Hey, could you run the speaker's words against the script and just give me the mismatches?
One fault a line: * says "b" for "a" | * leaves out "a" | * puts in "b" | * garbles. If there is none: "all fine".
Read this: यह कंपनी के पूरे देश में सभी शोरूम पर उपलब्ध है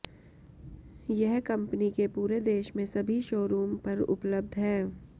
all fine